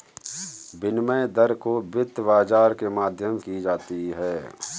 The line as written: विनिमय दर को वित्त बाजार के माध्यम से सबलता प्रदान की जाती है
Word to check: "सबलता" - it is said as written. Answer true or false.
false